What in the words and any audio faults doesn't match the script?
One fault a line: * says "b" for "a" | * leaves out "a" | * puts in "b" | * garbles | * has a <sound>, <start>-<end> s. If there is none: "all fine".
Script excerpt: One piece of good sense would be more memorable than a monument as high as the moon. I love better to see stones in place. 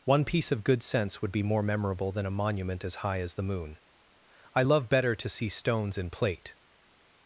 * says "plate" for "place"